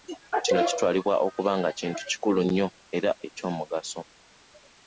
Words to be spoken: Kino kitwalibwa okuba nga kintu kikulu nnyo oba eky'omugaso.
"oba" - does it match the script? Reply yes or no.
no